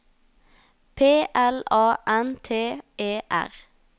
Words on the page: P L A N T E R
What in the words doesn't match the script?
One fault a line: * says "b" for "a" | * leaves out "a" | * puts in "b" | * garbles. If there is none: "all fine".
all fine